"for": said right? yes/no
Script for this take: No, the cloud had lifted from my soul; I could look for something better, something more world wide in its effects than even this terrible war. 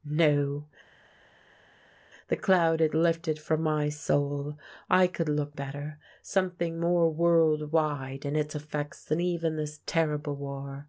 no